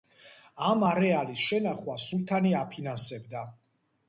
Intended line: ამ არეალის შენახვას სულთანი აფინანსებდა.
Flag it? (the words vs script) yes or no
no